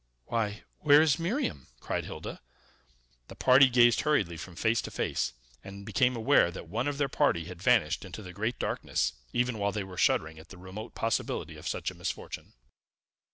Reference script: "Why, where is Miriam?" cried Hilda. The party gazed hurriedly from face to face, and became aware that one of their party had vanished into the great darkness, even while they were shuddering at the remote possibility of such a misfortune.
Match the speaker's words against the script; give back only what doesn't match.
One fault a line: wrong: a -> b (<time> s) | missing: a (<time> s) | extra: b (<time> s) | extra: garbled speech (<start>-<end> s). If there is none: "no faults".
no faults